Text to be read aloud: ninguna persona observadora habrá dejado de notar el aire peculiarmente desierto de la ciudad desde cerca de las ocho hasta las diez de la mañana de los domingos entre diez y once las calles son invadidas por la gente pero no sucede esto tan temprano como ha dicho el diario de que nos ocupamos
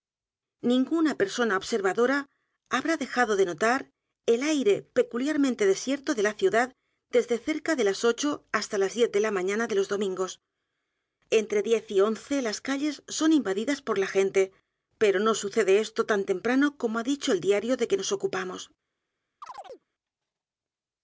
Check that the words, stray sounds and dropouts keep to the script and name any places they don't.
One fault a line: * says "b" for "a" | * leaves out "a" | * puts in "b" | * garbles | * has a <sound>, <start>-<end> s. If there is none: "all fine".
* has a chirp, 19.4-19.9 s